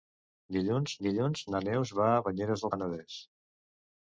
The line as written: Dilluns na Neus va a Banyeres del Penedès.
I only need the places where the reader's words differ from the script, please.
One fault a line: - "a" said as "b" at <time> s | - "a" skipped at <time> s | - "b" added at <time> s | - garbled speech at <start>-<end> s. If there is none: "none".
- "dilluns" added at 1.1 s
- "del" skipped at 2.7 s